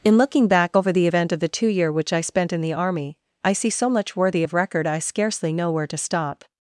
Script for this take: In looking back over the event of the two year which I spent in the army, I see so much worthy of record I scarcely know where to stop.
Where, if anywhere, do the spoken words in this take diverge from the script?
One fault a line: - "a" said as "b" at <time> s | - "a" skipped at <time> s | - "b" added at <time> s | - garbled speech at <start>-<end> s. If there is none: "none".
none